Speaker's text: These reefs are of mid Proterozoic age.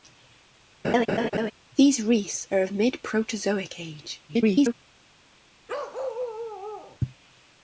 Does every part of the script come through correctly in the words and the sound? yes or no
no